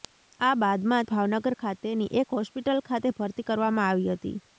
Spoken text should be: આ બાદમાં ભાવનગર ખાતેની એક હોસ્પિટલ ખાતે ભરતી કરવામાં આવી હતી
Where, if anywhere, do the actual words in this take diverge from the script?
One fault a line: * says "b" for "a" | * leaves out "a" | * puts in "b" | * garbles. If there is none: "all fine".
all fine